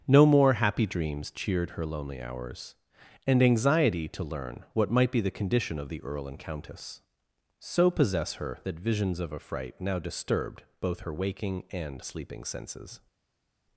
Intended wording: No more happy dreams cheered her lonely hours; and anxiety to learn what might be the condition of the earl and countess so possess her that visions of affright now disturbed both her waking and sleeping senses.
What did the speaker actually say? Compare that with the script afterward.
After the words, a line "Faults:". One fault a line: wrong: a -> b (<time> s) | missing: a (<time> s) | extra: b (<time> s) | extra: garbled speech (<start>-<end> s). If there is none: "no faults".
No more happy dreams cheered her lonely hours; and anxiety to learn what might be the condition of the earl and countess so possess her that visions of affright now disturbed both her waking and sleeping senses.
Faults:
no faults